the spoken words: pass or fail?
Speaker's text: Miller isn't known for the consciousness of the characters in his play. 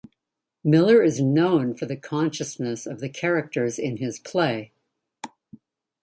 fail